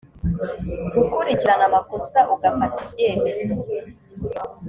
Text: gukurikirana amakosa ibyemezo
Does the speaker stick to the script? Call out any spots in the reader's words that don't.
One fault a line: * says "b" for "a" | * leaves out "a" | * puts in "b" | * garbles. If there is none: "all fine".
* puts in "ugafata"